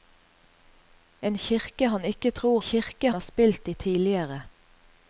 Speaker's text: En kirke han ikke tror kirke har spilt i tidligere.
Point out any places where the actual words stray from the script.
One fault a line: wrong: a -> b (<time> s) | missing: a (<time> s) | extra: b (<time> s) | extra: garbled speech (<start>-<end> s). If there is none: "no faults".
no faults